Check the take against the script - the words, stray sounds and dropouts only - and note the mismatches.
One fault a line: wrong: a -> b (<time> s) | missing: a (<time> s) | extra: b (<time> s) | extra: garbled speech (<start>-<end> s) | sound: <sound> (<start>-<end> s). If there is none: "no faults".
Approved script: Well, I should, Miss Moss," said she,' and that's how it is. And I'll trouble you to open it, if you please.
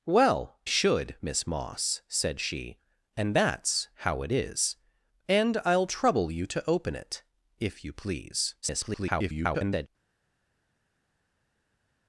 missing: I (0.6 s)
extra: garbled speech (8.6-9.9 s)